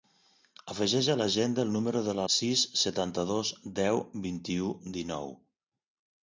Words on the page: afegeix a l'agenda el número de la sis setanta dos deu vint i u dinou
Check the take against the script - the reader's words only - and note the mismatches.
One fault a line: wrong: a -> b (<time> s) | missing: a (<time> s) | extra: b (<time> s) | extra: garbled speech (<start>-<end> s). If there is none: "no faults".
no faults